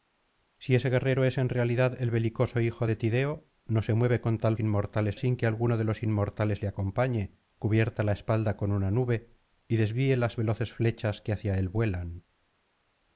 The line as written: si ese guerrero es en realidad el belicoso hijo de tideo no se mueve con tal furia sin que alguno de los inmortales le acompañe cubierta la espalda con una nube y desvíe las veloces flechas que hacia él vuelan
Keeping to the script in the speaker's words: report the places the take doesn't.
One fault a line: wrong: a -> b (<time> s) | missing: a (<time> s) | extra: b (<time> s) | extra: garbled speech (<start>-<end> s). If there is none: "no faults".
wrong: furia -> inmortales (4.6 s)